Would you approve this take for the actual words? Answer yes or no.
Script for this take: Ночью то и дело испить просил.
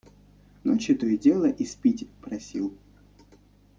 yes